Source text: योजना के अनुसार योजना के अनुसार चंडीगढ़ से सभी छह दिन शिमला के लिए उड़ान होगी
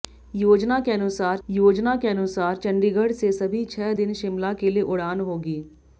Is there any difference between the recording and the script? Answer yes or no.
no